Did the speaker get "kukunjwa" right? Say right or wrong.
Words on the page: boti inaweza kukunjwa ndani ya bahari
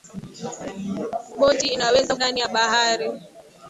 wrong